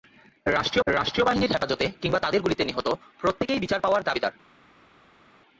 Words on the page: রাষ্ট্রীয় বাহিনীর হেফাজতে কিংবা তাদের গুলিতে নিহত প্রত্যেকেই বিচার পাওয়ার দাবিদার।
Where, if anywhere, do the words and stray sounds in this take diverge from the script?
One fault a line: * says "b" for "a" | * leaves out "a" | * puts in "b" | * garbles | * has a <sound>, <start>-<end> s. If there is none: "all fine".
* puts in "রাষ্ট্রীয়"